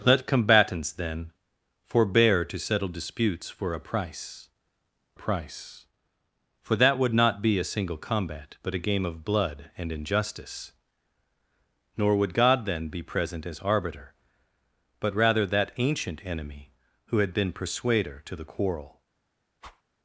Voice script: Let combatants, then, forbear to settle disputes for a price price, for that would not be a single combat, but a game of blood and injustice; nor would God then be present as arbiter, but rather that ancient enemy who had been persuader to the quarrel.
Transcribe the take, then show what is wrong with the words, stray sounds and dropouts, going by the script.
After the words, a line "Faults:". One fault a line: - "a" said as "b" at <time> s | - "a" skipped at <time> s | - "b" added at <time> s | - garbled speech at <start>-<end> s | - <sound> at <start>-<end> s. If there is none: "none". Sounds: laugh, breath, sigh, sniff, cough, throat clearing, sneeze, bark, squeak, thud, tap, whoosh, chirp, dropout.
Let combatants, then, forbear to settle disputes for a price price, for that would not be a single combat, but a game of blood and injustice; nor would God then be present as arbiter, but rather that ancient enemy who had been persuader to the quarrel.
Faults:
- whoosh at 19.6-19.8 s